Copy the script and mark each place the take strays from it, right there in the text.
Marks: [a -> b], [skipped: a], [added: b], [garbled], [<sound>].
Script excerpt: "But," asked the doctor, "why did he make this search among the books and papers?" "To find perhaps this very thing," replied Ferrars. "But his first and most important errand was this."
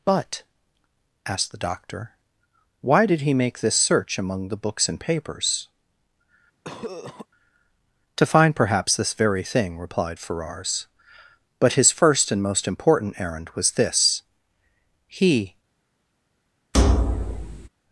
"But," asked the doctor, "why did he make this search among the books and papers?" [cough] "To find perhaps this very thing," replied Ferrars. "But his first and most important errand was this." [added: He] [thud]